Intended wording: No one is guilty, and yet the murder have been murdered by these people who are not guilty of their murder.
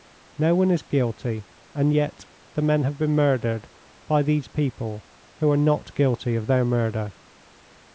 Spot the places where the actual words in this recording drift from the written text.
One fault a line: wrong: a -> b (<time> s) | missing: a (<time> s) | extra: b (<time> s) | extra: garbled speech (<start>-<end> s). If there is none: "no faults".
wrong: murder -> men (2.6 s)